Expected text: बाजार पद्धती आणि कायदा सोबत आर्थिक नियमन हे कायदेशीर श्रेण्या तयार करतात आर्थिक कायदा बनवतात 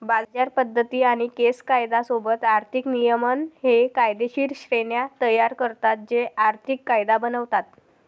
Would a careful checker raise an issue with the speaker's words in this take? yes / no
yes